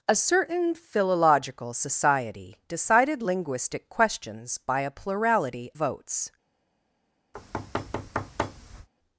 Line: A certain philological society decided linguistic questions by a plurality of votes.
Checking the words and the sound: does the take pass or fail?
fail